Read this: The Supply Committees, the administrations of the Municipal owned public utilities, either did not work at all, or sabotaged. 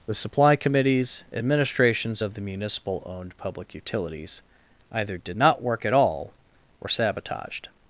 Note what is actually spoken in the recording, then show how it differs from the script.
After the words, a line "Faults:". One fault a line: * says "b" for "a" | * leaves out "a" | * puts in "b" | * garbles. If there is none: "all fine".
The Supply Committees, administrations of the Municipal owned public utilities, either did not work at all, or sabotaged.
Faults:
* leaves out "the"